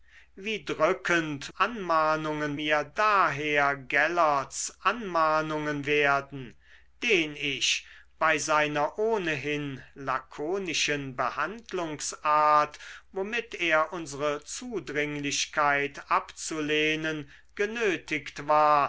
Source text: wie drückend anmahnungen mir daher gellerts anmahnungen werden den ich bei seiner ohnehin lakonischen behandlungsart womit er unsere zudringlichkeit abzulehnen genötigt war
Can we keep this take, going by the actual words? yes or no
yes